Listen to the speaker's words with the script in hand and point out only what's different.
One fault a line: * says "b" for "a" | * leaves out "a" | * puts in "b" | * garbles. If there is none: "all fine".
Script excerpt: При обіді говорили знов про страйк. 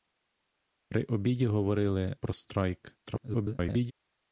* leaves out "знов"
* garbles